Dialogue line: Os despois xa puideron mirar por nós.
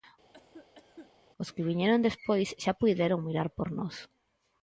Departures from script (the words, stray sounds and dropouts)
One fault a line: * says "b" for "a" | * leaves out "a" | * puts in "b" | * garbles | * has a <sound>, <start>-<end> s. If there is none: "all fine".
* has a cough, 0.3-1.1 s
* puts in "que viñeron"